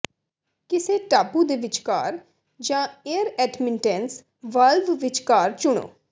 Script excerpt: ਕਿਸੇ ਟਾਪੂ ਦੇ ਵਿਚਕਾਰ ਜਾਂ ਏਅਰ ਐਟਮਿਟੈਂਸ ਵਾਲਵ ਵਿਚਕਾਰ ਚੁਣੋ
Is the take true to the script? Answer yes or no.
yes